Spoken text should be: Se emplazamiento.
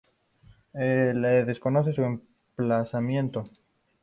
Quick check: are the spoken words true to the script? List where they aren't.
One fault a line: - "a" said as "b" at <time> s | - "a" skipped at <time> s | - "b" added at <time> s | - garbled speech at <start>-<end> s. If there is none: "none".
- "desconoce su" added at 1.4 s